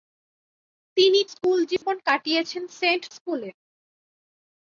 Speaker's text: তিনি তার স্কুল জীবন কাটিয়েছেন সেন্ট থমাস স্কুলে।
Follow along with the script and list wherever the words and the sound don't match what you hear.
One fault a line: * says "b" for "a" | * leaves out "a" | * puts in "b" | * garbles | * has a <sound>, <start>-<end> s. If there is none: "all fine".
* leaves out "তার"
* has a dropout, 1.8-1.8 s
* leaves out "থমাস"